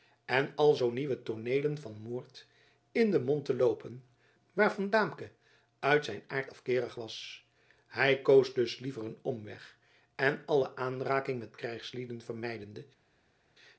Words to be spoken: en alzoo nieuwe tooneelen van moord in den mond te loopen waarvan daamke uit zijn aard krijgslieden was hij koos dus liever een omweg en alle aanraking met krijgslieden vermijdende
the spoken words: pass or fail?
fail